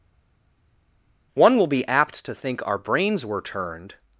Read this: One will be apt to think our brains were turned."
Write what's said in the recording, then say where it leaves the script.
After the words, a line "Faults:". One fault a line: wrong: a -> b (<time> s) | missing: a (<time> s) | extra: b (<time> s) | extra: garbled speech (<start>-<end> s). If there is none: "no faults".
One will be apt to think our brains were turned."
Faults:
no faults